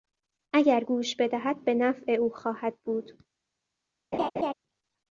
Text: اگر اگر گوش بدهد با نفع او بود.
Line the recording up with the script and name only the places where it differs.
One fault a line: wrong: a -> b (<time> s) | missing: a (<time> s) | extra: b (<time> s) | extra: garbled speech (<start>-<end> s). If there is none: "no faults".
missing: اگر (0.8 s)
wrong: با -> به (1.6 s)
extra: خواهد (2.3 s)